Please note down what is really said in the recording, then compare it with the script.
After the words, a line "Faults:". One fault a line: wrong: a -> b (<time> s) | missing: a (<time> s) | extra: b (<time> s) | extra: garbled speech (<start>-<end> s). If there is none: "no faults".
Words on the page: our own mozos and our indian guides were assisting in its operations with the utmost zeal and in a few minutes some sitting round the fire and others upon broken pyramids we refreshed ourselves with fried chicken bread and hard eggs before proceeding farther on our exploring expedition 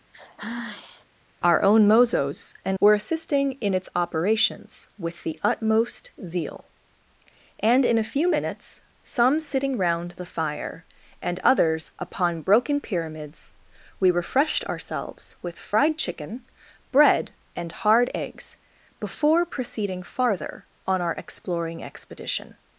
our own mozos and were assisting in its operations with the utmost zeal and in a few minutes some sitting round the fire and others upon broken pyramids we refreshed ourselves with fried chicken bread and hard eggs before proceeding farther on our exploring expedition
Faults:
missing: our indian guides (2.8 s)